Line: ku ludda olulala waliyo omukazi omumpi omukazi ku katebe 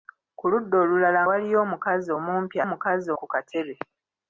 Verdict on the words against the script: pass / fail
pass